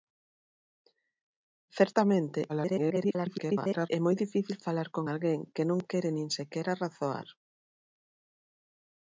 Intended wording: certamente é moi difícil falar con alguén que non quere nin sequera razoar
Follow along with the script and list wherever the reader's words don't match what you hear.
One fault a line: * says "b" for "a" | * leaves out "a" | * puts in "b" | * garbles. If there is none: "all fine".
* garbles